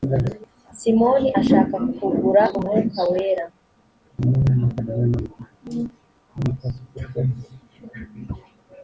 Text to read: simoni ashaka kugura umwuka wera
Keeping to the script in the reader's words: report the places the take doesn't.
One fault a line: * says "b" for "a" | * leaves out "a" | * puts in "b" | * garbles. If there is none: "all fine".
all fine